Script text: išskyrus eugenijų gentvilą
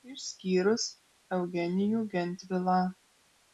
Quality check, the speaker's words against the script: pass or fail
pass